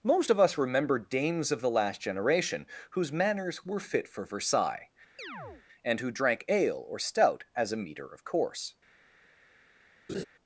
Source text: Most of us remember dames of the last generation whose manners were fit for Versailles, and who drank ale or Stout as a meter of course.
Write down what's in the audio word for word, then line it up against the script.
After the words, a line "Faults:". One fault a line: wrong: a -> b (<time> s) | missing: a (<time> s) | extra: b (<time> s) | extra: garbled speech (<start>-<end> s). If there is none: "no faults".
Most of us remember dames of the last generation whose manners were fit for Versailles, and who drank ale or Stout as a meter of course.
Faults:
no faults